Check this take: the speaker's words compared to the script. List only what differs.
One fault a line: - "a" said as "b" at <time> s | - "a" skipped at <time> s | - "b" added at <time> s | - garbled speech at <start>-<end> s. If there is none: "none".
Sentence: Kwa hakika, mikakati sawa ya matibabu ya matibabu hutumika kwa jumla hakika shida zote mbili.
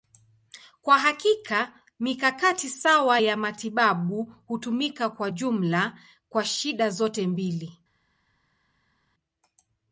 - "ya matibabu" skipped at 4.3 s
- "hakika" said as "kwa" at 6.3 s